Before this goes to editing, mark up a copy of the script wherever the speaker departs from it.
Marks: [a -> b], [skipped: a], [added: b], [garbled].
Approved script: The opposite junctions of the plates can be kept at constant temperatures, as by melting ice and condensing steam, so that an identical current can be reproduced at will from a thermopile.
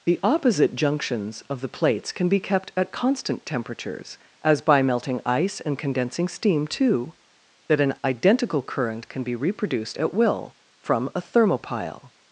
The opposite junctions of the plates can be kept at constant temperatures, as by melting ice and condensing steam, [so -> too] that an identical current can be reproduced at will from a thermopile.